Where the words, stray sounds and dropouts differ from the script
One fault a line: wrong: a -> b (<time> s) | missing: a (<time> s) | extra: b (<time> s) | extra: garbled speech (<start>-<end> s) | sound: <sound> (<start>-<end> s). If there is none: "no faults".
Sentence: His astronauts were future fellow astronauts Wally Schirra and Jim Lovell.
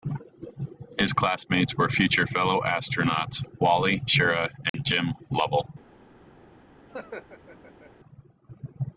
wrong: astronauts -> classmates (1.1 s)
sound: dropout (4.7-4.7 s)
sound: laugh (6.9-7.9 s)